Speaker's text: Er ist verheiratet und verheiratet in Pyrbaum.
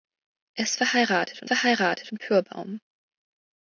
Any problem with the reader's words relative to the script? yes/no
no